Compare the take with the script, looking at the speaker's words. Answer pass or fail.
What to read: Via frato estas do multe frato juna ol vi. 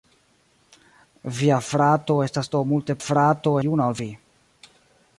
pass